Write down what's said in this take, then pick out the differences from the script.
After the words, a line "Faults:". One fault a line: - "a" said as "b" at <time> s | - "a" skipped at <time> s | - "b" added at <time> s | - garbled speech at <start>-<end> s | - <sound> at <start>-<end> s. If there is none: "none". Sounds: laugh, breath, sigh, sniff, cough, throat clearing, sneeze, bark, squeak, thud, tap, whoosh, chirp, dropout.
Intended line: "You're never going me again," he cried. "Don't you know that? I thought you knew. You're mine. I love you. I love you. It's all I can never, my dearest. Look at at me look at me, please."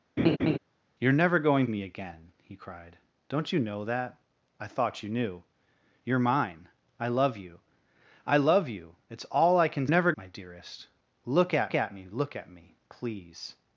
"You're never going me again," he cried. "Don't you know that? I thought you knew. You're mine. I love you. I love you. It's all I can never, my dearest. Look at at me look at me, please."
Faults:
- laugh at 0.2-0.6 s